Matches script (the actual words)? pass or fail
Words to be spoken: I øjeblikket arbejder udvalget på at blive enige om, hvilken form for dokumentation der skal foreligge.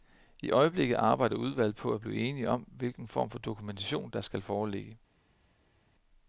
pass